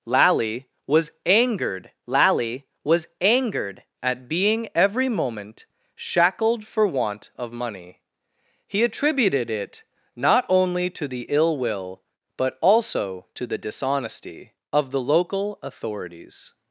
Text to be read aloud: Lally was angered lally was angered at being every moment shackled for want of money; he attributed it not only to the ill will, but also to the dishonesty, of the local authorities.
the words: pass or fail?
pass